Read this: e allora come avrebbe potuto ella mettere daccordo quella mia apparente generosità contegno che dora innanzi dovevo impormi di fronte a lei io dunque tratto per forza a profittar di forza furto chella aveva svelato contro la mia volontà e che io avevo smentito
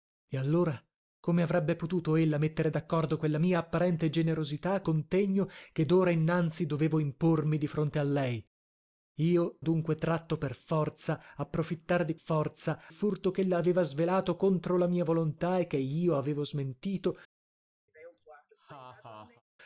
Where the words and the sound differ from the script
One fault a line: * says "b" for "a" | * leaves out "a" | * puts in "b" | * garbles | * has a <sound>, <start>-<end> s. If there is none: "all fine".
* has a laugh, 17.9-19.4 s